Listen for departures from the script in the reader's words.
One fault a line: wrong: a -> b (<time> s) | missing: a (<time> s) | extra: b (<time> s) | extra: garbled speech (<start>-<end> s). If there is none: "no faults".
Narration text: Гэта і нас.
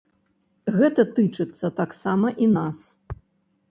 extra: тычыцца таксама (1.2 s)